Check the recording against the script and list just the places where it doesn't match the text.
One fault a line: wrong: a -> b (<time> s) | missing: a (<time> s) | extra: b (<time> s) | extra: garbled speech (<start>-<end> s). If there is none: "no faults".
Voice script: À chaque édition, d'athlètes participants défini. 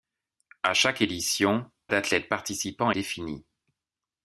no faults